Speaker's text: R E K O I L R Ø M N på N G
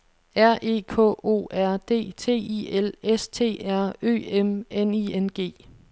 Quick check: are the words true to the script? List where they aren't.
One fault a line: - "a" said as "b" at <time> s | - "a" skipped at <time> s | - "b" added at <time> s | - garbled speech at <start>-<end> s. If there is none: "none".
- "R D T" added at 1.5 s
- "S T" added at 3.0 s
- "på" said as "I" at 4.9 s